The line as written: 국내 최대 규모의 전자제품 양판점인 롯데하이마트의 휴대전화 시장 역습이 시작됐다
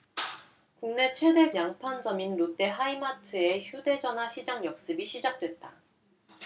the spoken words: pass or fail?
fail